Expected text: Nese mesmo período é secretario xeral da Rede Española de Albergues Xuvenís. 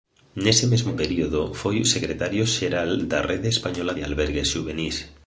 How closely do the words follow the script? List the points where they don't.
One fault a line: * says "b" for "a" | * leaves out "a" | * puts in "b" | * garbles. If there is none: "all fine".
* says "foi" for "é"